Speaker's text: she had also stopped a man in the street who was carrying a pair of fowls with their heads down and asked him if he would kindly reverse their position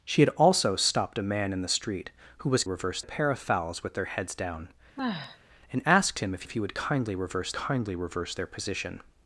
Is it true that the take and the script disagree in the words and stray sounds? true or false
true